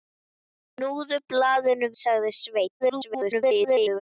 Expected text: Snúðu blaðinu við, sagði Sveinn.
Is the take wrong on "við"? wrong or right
wrong